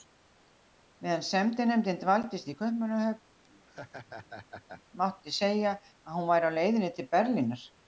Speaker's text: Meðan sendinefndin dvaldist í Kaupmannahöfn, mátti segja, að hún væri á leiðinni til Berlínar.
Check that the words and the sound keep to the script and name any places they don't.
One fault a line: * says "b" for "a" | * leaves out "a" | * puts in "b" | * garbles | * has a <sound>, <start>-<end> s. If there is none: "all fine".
* has a laugh, 3.4-4.8 s